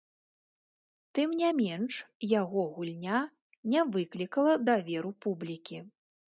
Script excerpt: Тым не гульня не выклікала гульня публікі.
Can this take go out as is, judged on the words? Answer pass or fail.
fail